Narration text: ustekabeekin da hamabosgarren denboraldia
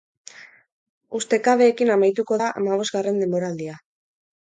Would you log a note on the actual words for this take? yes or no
yes